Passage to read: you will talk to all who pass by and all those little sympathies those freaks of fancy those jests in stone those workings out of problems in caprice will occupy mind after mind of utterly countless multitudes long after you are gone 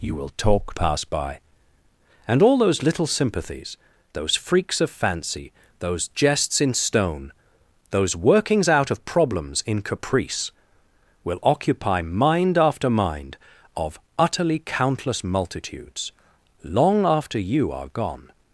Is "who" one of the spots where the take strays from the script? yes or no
yes